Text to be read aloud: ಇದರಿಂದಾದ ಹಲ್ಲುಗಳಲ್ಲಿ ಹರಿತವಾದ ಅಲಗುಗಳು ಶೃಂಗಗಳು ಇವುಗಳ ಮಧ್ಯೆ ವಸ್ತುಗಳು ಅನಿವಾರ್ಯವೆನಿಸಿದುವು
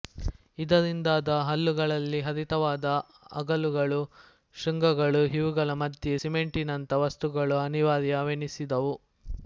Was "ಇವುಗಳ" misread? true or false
false